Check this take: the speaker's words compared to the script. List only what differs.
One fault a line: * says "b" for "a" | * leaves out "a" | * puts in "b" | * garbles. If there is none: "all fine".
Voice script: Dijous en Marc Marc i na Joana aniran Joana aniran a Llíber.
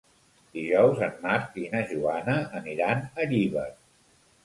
* leaves out "Marc"
* leaves out "Joana aniran"